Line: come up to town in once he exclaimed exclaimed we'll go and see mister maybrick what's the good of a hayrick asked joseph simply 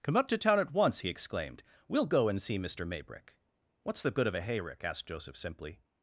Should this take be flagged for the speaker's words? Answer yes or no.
yes